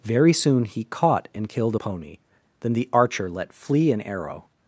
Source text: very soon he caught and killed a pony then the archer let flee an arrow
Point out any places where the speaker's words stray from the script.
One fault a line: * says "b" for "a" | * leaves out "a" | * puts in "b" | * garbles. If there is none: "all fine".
all fine